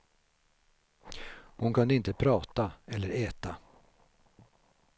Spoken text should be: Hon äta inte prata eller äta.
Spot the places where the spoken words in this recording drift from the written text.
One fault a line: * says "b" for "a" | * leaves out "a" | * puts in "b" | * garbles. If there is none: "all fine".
* says "kunde" for "äta"